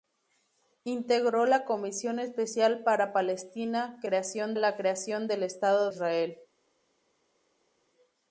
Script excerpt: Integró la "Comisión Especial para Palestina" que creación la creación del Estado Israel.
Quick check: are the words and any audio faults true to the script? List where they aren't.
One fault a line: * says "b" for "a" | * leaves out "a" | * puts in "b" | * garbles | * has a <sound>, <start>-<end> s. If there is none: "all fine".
all fine